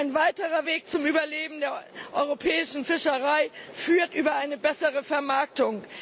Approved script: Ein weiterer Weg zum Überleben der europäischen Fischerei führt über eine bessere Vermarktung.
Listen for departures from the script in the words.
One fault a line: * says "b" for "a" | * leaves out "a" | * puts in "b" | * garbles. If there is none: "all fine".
all fine